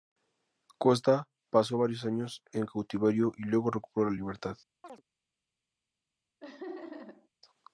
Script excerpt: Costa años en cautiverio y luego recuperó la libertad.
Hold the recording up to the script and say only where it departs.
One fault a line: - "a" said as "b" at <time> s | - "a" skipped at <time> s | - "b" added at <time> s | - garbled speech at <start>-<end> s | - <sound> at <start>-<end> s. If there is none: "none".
- "pasó varios" added at 1.5 s
- chirp at 4.8-5.0 s
- laugh at 6.4-7.3 s